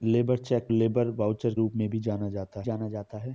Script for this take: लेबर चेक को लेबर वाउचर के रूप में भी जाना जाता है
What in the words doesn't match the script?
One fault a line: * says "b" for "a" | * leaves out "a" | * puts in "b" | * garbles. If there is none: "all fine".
* leaves out "को"
* leaves out "के"
* puts in "जाना जाता"